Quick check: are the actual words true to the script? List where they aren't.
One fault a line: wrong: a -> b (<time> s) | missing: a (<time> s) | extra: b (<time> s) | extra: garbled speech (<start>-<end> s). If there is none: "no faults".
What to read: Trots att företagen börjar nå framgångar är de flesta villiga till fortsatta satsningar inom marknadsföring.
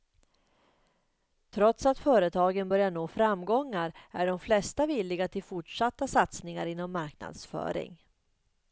no faults